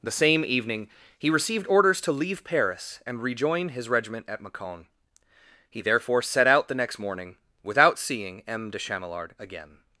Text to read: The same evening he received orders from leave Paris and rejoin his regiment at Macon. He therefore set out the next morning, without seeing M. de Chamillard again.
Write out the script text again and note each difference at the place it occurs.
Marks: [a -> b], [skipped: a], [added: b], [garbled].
The same evening he received orders [from -> to] leave Paris and rejoin his regiment at Macon. He therefore set out the next morning, without seeing M. de Chamillard again.